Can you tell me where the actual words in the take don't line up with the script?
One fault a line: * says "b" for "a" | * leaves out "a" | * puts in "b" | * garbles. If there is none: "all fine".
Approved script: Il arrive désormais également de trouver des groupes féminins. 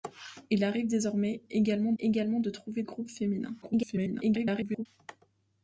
* puts in "également"
* leaves out "des"
* garbles